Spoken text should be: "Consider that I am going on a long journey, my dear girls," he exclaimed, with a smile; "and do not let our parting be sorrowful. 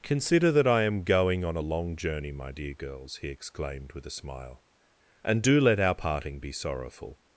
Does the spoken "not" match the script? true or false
false